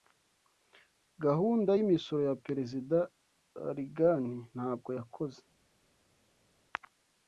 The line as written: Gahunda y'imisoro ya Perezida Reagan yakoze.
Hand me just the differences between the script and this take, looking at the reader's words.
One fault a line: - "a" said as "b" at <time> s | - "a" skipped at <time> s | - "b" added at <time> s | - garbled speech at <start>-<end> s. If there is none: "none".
- "ntabwo" added at 4.6 s